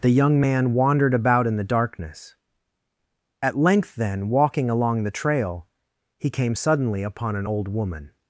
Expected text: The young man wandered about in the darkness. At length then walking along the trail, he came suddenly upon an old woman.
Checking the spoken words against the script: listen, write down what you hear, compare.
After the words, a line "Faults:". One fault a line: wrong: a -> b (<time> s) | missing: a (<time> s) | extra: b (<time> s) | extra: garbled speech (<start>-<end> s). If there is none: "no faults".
The young man wandered about in the darkness. At length then walking along the trail, he came suddenly upon an old woman.
Faults:
no faults